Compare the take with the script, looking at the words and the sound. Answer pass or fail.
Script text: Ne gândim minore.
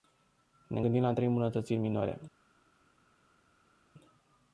fail